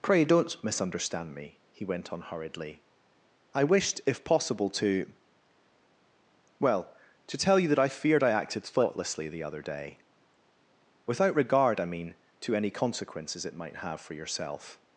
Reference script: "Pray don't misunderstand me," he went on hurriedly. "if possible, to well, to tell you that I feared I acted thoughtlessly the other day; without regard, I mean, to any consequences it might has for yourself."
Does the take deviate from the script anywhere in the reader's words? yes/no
yes